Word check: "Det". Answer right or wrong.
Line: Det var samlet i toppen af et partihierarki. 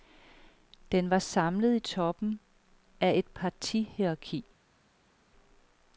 wrong